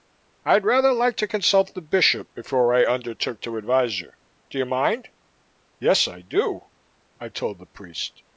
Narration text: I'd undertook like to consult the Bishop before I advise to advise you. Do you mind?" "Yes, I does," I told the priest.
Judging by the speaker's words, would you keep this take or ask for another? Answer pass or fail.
fail